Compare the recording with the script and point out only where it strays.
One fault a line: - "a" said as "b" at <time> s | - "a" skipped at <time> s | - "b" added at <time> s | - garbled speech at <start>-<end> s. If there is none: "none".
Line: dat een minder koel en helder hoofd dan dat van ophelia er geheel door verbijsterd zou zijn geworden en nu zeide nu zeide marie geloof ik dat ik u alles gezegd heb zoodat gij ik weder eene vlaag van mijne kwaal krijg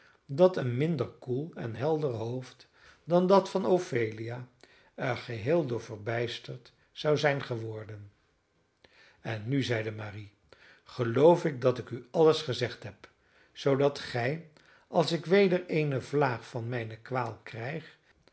- "nu zeide" skipped at 9.9 s
- "als" added at 14.9 s